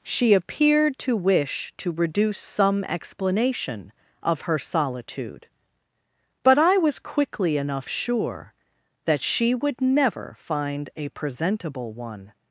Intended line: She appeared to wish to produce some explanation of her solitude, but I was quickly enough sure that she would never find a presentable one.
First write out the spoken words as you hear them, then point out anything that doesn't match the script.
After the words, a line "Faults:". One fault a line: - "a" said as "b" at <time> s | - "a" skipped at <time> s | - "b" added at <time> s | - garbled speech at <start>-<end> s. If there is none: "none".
She appeared to wish to reduce some explanation of her solitude, but I was quickly enough sure that she would never find a presentable one.
Faults:
- "produce" said as "reduce" at 1.9 s